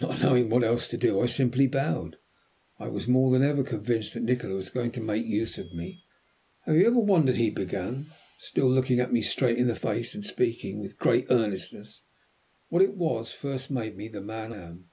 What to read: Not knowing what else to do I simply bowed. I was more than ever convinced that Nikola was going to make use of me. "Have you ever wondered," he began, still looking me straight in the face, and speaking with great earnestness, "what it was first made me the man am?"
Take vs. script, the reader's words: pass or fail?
pass